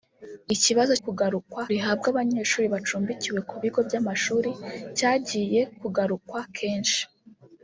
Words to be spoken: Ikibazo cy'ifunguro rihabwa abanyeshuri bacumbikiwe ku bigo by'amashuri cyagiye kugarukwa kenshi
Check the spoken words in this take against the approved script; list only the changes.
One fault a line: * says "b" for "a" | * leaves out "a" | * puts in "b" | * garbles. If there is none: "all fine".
* says "kugarukwa" for "cy'ifunguro"